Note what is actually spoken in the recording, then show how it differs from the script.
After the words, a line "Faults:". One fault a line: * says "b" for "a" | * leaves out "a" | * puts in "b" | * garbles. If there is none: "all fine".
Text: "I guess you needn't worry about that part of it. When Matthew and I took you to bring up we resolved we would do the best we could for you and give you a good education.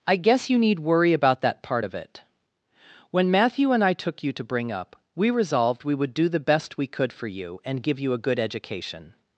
"I guess you need worry about that part of it. When Matthew and I took you to bring up we resolved we would do the best we could for you and give you a good education.
Faults:
* says "need" for "needn't"